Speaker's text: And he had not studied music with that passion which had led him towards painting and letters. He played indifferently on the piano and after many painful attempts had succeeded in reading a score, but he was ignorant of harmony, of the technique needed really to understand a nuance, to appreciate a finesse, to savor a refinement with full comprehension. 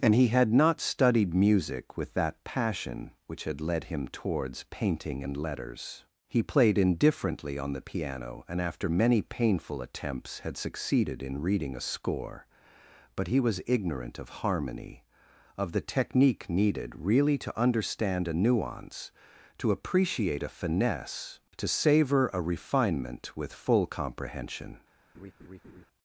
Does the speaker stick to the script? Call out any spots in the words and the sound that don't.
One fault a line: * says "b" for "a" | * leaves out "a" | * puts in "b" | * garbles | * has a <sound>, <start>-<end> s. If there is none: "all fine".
* has a laugh, 25.1-25.9 s